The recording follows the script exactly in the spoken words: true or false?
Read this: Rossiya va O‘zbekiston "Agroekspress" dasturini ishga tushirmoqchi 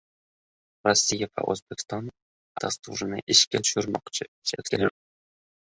false